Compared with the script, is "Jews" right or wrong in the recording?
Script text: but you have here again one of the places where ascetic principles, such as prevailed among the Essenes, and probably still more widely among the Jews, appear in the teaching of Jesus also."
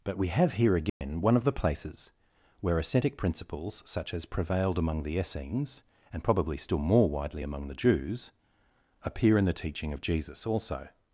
right